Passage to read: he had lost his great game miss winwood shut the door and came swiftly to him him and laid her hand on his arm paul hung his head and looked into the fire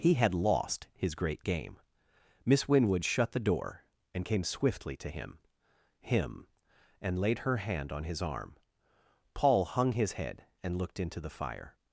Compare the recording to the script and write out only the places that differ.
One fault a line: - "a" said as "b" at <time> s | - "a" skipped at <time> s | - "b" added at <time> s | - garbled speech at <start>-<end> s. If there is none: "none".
none